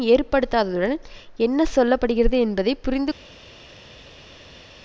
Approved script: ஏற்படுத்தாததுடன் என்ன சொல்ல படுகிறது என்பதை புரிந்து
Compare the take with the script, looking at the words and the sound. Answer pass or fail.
pass